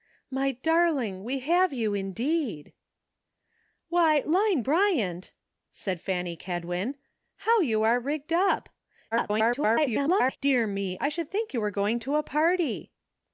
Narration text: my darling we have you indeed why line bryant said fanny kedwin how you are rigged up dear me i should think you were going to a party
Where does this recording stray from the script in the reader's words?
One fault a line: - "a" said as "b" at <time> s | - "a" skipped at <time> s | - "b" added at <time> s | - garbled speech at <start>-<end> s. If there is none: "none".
- garbled speech at 9.1-10.4 s